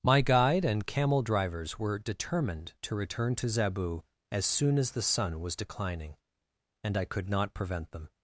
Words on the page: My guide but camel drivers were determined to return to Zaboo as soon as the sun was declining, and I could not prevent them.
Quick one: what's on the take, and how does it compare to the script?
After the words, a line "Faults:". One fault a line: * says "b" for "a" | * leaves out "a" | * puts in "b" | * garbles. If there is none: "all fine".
My guide and camel drivers were determined to return to Zaboo as soon as the sun was declining, and I could not prevent them.
Faults:
* says "and" for "but"